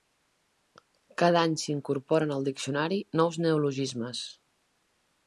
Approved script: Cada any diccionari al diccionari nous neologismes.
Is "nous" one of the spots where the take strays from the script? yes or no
no